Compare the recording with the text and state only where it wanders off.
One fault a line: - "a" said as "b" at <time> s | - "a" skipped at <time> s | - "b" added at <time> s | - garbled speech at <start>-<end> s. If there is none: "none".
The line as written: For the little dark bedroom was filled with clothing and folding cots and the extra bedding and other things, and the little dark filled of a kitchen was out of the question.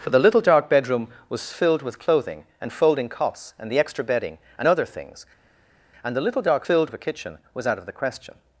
none